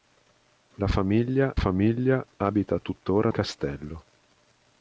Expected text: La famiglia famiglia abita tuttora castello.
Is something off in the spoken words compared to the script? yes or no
no